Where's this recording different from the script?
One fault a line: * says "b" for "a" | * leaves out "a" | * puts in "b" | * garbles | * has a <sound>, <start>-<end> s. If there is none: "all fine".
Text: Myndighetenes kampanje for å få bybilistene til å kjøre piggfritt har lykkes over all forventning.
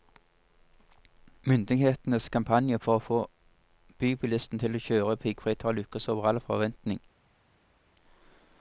all fine